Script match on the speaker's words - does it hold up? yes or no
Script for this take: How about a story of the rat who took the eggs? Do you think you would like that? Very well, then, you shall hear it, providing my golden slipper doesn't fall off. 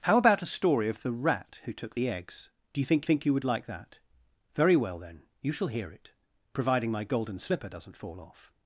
no